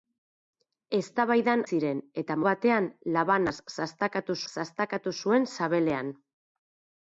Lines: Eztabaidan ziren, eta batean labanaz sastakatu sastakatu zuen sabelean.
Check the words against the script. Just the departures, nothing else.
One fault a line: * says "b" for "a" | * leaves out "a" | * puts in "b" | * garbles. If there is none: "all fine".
all fine